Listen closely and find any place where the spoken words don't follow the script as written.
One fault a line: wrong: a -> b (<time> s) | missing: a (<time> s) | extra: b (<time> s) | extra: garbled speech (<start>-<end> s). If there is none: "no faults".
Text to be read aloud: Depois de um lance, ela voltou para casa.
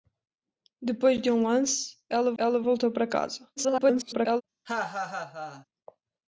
extra: ela (2.4 s)
extra: garbled speech (3.6-4.4 s)